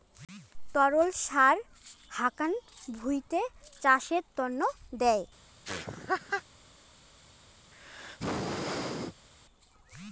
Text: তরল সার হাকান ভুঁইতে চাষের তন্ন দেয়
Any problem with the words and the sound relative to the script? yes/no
yes